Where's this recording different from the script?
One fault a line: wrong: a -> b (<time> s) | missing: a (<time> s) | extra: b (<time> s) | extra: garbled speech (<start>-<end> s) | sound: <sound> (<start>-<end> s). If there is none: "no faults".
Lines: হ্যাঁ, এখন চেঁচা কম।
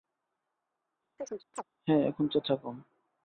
sound: chirp (1.2-1.6 s)